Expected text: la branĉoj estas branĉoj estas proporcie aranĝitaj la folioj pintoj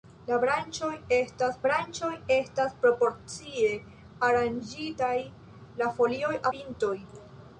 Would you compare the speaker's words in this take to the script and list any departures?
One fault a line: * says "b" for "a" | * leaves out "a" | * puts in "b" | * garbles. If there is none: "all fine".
all fine